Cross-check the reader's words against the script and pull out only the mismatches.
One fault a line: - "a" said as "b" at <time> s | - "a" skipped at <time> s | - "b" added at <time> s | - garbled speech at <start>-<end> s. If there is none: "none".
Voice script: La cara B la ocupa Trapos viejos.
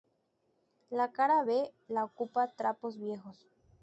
none